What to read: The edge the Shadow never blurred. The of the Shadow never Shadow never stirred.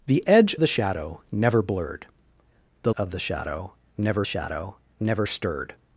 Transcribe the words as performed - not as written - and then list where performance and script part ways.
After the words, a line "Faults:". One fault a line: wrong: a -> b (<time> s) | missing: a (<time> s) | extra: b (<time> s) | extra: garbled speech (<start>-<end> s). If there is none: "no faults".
The edge the Shadow never blurred. The of the Shadow never Shadow never stirred.
Faults:
no faults